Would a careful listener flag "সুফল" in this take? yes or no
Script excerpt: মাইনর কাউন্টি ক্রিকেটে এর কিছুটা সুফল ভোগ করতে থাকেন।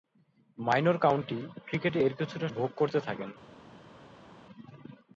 yes